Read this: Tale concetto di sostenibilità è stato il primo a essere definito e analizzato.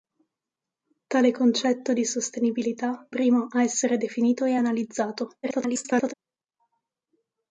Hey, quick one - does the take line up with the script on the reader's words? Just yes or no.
no